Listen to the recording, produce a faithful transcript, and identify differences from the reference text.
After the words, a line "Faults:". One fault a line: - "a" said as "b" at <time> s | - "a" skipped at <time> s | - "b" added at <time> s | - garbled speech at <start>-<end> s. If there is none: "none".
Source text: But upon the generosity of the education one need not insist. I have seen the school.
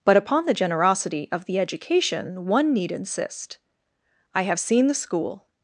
But upon the generosity of the education one need insist. I have seen the school.
Faults:
- "not" skipped at 2.9 s